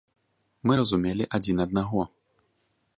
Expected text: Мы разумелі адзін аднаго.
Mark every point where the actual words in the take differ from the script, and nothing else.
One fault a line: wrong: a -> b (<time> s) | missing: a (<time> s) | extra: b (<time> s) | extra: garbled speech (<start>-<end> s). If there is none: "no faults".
no faults